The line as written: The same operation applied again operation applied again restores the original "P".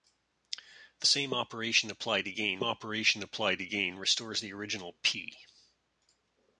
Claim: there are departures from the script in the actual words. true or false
false